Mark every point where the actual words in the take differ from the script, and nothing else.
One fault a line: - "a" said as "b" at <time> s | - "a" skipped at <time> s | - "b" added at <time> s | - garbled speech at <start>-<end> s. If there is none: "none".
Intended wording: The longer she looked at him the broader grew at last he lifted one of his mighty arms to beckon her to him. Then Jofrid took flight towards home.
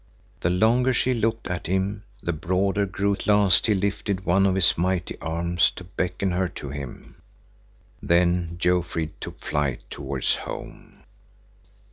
none